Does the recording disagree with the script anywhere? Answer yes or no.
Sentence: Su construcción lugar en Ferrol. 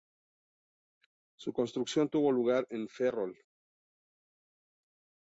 yes